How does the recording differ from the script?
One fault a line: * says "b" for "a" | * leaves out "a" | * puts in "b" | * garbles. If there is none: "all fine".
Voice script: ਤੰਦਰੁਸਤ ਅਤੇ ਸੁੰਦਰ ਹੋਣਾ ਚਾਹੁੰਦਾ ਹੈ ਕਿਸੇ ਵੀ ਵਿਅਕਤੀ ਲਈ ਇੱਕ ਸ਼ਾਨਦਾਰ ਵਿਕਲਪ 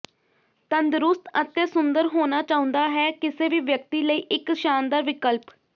all fine